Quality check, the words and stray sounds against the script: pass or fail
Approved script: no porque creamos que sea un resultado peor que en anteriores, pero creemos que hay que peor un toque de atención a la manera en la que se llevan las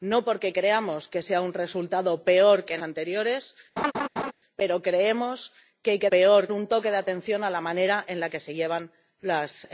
fail